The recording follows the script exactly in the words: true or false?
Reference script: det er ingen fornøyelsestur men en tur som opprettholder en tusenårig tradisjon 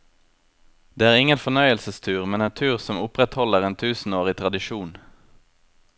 true